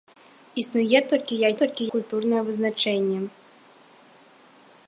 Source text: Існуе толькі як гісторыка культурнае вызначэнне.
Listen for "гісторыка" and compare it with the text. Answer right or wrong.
wrong